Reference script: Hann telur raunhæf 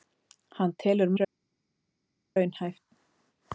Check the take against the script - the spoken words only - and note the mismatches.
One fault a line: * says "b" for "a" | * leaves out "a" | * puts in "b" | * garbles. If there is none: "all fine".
all fine